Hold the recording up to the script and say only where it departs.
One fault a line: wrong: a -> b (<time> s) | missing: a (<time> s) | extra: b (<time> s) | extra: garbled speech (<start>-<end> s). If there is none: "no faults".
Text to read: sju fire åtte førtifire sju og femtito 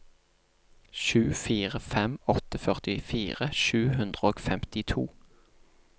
extra: fem (1.9 s)
extra: hundre (4.0 s)